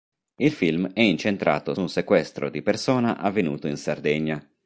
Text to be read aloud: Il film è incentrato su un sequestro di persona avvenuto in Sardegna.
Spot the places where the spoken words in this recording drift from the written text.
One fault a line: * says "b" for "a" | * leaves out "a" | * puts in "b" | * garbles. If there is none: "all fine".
* leaves out "su"